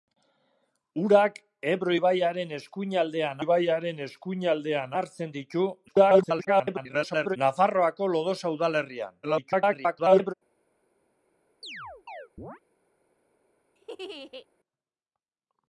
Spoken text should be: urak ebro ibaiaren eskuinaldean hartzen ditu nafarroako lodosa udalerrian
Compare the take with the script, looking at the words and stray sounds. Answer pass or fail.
fail